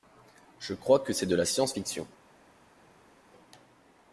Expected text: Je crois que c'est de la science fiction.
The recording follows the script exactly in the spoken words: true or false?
true